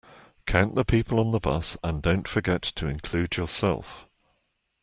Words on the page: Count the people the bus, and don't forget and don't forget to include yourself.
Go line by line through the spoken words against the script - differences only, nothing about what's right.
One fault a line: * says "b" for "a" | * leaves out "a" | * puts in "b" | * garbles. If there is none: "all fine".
* puts in "on"
* leaves out "and don't forget"